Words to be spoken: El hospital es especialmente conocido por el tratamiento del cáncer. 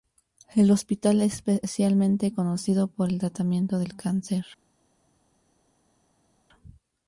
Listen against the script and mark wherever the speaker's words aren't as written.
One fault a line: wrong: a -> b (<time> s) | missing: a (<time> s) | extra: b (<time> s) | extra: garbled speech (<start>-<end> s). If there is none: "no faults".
no faults